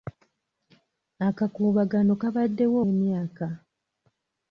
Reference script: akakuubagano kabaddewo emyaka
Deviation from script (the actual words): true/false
false